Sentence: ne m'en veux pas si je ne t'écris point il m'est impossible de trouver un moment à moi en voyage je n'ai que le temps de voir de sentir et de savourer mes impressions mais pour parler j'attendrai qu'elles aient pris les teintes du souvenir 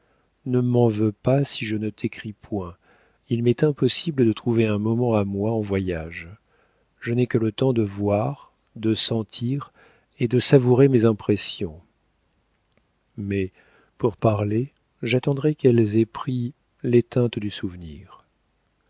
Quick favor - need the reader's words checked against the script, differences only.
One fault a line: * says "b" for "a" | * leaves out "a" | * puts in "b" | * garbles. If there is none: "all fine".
all fine